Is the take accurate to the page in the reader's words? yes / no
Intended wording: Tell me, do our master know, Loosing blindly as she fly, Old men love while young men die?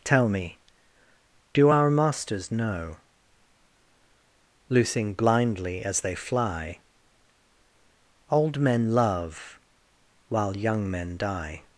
no